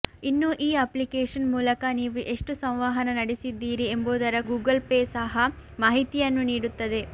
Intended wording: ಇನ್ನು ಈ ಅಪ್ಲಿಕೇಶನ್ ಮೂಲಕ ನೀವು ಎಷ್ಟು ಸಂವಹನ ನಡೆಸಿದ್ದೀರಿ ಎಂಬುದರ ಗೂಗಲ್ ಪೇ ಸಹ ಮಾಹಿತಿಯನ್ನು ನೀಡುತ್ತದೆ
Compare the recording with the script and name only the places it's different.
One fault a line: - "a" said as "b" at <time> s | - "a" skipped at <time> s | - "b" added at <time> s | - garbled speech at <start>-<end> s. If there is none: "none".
none